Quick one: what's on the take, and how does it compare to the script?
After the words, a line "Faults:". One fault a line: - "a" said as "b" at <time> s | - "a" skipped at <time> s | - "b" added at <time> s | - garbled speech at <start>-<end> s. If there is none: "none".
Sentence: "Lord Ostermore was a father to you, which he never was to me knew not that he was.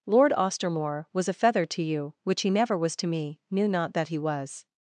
"Lord Ostermore was a feather to you, which he never was to me knew not that he was.
Faults:
- "father" said as "feather" at 1.3 s